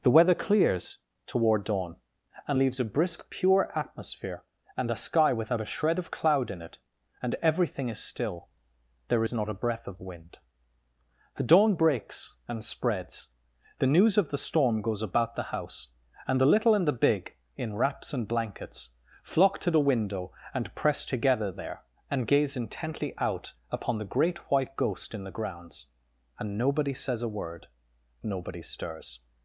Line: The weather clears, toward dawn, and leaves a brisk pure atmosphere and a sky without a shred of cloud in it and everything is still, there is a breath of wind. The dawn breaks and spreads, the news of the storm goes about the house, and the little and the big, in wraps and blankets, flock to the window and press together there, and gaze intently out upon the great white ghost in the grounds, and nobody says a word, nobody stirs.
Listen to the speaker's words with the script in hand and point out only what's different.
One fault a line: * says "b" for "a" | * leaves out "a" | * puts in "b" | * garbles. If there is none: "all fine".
* puts in "not"